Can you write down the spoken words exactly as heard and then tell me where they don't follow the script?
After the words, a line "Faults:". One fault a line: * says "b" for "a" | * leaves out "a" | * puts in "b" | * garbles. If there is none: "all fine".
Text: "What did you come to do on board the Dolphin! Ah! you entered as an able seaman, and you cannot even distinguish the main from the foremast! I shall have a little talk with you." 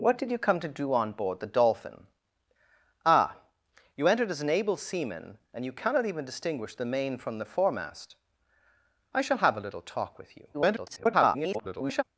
"What did you come to do on board the Dolphin! Ah! you entered as an able seaman, and you cannot even distinguish the main from the foremast! I shall have a little talk with you." [garbled]
Faults:
* garbles